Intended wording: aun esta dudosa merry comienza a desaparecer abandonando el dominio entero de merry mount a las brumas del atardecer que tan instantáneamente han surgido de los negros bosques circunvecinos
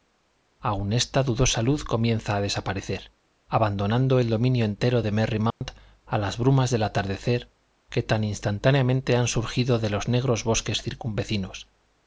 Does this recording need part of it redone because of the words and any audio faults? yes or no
yes